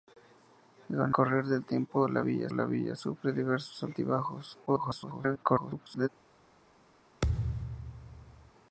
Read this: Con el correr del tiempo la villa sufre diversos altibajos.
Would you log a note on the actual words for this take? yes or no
yes